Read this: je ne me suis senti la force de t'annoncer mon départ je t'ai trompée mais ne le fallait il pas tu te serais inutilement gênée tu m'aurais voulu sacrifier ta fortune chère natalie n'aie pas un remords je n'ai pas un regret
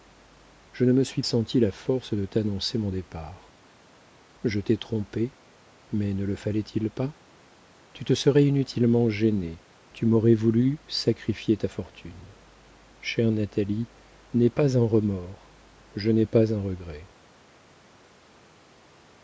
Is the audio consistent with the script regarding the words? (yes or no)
yes